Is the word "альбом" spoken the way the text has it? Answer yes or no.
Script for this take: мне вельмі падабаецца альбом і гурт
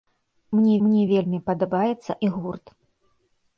no